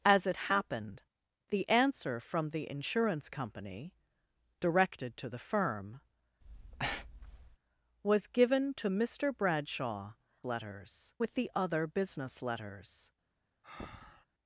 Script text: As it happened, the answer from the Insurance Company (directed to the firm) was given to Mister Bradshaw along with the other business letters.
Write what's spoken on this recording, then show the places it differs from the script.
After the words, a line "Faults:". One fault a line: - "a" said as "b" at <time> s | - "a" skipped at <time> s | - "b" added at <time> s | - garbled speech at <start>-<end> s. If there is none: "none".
As it happened, the answer from the Insurance Company (directed to the firm) was given to Mister Bradshaw letters with the other business letters.
Faults:
- "along" said as "letters" at 10.4 s